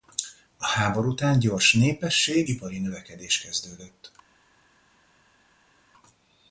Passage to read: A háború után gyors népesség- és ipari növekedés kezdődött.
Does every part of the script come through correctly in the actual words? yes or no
no